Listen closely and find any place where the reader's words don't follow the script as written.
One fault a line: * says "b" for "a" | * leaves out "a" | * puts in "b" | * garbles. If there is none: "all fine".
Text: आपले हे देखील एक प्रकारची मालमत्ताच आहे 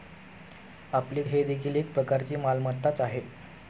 all fine